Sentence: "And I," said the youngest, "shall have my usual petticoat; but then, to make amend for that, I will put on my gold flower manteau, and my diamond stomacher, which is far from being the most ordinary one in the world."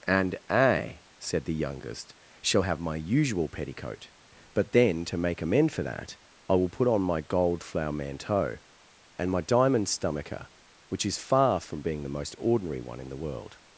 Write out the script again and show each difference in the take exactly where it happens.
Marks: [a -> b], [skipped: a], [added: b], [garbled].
"And I," said the youngest, "shall have my usual petticoat; but then, to make amend for that, I will put on my gold flower manteau, and my diamond stomacher, which is far from being the most ordinary one in the world."